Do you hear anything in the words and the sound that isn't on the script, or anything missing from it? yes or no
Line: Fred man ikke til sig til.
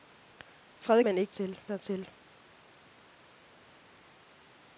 no